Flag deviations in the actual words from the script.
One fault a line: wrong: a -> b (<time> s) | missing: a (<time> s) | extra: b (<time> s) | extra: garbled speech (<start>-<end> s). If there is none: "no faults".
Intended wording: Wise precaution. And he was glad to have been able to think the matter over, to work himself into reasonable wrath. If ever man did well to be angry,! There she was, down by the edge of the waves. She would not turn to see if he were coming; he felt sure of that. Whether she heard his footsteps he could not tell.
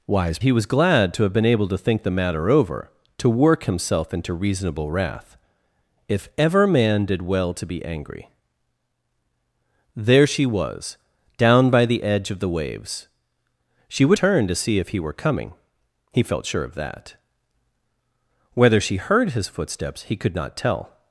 missing: precaution And (0.4 s)
missing: not (14.2 s)